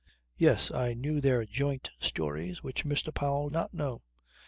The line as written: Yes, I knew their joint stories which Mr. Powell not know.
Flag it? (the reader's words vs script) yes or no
no